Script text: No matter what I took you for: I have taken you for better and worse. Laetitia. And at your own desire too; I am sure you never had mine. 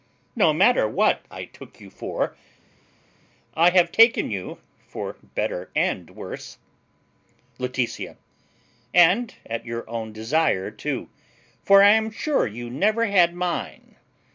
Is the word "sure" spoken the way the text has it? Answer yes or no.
yes